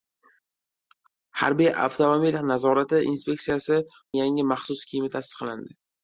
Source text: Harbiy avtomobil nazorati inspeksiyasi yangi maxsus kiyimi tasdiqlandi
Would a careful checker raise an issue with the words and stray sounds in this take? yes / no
no